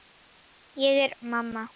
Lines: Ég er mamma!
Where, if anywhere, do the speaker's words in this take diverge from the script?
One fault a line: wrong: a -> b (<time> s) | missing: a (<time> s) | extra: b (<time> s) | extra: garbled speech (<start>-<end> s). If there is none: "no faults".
no faults